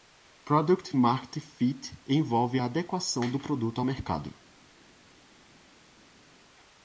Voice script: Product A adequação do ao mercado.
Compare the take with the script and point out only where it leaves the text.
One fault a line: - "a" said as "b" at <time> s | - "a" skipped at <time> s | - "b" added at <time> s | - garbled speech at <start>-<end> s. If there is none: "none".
- "Market Fit envolve" added at 0.9 s
- "produto" added at 3.4 s